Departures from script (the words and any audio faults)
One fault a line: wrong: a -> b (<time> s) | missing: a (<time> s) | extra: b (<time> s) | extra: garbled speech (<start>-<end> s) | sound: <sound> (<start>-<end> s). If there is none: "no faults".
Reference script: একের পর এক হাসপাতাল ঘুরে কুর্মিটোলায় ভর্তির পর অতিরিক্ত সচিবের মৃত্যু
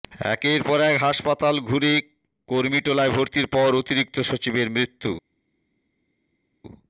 no faults